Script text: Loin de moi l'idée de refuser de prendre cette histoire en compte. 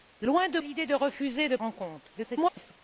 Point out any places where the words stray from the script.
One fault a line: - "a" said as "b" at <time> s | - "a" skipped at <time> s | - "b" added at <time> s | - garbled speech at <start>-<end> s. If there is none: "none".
- "moi" skipped at 0.6 s
- "prendre cette histoire" skipped at 1.6 s
- garbled speech at 2.1-2.8 s